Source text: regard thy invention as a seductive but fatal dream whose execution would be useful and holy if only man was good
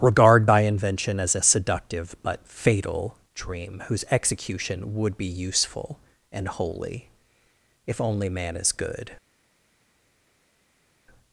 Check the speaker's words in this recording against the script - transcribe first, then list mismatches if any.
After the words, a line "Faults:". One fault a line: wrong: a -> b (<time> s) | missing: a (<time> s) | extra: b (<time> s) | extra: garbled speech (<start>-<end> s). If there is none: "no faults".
regard thy invention as a seductive but fatal dream whose execution would be useful and holy if only man is good
Faults:
wrong: was -> is (8.5 s)